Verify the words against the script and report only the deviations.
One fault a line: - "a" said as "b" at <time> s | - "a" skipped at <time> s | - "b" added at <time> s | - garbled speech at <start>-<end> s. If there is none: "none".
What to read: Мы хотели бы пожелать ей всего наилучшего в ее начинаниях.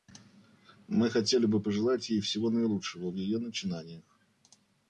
none